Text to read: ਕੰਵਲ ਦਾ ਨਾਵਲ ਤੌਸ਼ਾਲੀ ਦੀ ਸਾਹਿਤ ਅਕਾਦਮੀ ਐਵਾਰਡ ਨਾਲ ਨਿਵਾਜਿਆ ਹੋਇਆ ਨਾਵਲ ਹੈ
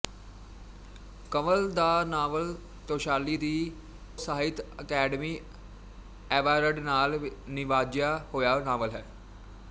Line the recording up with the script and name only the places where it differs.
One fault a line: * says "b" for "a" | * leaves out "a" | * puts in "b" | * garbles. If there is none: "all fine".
all fine